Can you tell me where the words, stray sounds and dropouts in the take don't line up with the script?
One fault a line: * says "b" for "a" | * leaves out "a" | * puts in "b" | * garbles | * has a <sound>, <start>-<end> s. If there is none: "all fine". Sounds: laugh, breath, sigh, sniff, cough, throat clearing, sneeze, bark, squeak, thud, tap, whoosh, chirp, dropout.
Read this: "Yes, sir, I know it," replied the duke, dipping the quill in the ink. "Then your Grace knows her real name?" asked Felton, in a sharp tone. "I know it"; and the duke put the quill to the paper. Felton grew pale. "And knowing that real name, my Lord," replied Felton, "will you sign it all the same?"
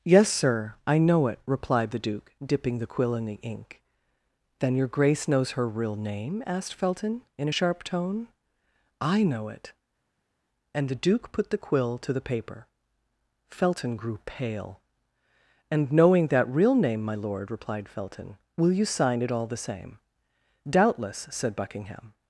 * puts in "Doubtless said Buckingham"